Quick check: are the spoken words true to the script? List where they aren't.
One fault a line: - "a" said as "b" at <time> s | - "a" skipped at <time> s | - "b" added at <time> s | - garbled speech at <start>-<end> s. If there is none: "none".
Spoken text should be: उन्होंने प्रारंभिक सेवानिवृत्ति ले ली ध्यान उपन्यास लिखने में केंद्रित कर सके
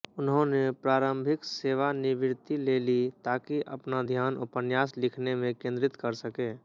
- "ताकि अपना" added at 3.2 s